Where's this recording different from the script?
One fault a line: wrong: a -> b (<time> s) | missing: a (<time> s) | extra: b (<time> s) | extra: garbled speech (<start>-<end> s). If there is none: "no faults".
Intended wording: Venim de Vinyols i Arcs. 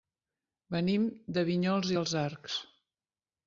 extra: els (2.0 s)